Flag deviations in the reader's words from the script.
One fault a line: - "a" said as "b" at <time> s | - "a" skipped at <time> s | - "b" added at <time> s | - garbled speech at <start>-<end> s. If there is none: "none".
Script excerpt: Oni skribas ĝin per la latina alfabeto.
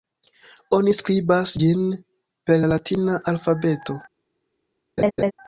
none